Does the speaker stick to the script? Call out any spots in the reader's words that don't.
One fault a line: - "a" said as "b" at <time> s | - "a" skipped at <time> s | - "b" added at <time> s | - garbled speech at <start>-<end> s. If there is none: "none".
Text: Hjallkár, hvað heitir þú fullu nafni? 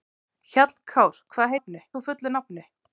- "heitir" said as "nafni" at 1.5 s